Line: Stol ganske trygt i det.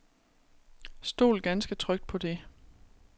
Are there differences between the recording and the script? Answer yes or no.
yes